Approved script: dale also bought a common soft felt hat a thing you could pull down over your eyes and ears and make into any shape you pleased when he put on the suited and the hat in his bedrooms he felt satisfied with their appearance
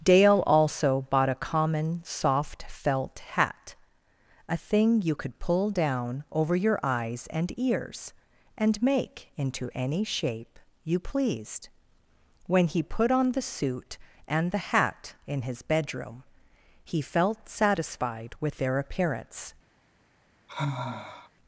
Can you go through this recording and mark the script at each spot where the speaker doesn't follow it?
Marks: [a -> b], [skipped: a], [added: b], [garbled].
dale also bought a common soft felt hat a thing you could pull down over your eyes and ears and make into any shape you pleased when he put on the [suited -> suit] and the hat in his [bedrooms -> bedroom] he felt satisfied with their appearance